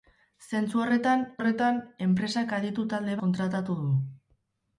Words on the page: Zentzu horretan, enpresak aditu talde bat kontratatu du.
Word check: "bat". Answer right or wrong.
wrong